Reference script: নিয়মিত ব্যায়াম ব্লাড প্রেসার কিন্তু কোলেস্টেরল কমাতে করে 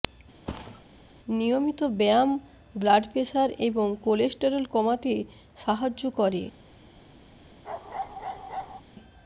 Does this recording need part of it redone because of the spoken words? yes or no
yes